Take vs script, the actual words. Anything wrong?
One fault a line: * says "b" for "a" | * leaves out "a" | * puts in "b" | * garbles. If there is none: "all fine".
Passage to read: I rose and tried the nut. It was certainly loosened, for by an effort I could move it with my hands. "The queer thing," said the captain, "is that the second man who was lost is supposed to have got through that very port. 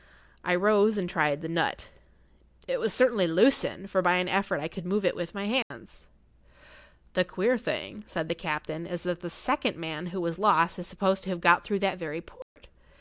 all fine